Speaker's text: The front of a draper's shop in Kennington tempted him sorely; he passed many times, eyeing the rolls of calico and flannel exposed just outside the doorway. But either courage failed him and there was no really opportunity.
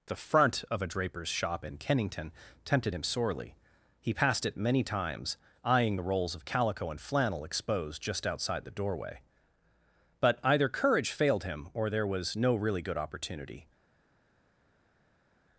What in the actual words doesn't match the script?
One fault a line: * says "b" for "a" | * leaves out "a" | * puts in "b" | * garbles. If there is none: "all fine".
* puts in "it"
* says "or" for "and"
* puts in "good"